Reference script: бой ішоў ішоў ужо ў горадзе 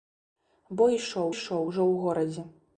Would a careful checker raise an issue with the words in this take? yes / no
no